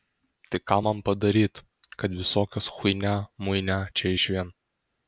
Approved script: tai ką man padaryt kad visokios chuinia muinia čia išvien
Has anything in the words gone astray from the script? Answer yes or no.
no